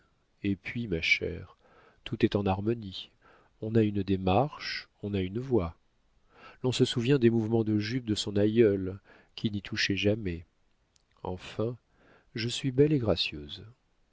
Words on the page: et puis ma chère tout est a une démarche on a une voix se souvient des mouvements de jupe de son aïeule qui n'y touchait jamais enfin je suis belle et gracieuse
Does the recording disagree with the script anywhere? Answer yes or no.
yes